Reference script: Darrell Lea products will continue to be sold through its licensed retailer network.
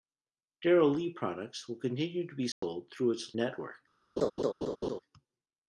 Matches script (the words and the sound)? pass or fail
fail